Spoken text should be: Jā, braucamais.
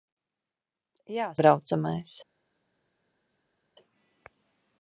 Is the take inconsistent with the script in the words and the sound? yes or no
no